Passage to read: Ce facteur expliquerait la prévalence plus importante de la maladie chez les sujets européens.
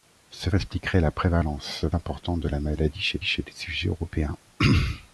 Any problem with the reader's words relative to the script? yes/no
yes